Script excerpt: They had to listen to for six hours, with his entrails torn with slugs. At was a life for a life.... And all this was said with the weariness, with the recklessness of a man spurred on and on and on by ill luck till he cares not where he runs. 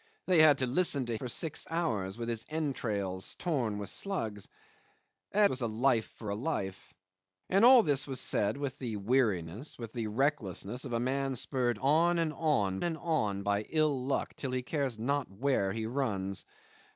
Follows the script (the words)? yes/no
yes